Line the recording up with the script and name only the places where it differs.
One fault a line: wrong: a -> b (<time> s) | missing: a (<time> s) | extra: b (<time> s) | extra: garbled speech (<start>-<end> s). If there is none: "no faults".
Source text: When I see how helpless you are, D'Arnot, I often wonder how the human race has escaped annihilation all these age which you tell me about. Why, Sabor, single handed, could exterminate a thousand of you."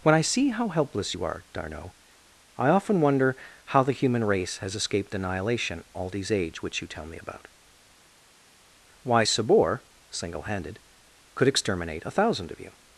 no faults